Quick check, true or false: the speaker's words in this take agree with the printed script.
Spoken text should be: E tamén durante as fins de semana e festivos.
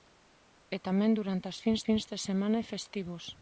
false